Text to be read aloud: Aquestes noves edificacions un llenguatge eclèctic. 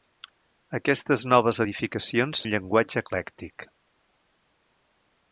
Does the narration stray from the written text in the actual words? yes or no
no